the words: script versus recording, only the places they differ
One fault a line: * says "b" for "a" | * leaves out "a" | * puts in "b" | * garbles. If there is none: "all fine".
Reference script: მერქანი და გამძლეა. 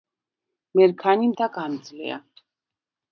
all fine